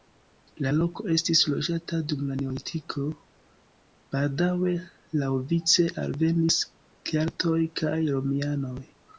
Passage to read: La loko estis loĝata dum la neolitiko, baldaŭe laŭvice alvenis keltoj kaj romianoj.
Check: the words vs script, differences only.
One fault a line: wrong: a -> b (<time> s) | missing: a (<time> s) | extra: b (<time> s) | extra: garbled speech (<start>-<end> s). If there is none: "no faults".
no faults